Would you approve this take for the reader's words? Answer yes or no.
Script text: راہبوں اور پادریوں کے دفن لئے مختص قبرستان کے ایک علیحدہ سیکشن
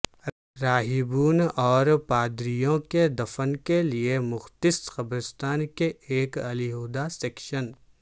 no